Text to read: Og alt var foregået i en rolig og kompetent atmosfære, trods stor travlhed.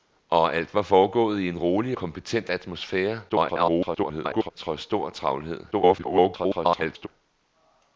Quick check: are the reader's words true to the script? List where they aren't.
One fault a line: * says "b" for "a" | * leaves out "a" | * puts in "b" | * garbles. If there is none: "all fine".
* leaves out "og"
* garbles
* garbles